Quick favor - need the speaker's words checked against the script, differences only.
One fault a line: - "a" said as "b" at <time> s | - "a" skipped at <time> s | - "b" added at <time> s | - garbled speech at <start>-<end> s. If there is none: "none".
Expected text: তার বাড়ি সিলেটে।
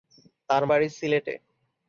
none